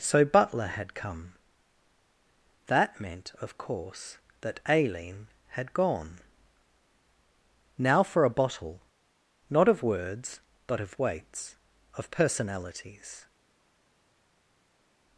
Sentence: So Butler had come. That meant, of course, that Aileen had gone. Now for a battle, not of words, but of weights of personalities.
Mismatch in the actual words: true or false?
true